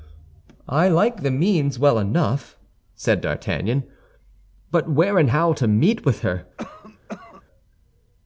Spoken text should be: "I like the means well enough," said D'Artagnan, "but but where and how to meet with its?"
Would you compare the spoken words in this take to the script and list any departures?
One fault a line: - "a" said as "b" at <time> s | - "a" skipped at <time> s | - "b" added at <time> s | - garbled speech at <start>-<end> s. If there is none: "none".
- "but" skipped at 4.9 s
- "its" said as "her" at 6.2 s